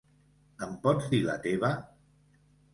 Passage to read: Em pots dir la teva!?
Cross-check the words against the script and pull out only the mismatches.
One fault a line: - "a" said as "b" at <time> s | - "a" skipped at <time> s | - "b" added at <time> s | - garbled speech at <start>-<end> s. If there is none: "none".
none